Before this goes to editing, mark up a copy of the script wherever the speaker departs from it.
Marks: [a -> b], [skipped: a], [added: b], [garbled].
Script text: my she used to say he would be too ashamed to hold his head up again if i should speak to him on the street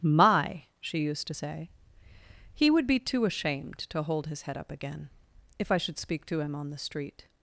my she used to say he would be too ashamed to hold his head up again if i should speak to him on the street